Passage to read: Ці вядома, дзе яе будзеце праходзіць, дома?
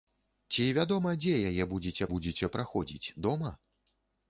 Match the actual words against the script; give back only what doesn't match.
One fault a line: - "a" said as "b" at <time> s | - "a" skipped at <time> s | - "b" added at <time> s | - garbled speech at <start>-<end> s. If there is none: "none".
- "будзеце" added at 2.1 s